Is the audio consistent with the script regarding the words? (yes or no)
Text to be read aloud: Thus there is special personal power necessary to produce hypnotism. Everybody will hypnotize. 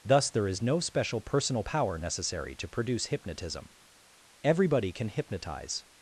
no